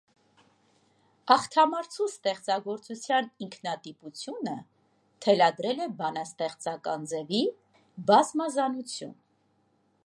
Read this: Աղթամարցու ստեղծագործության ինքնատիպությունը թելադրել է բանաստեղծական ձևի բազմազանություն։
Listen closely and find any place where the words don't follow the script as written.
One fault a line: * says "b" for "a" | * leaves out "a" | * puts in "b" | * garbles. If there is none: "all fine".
all fine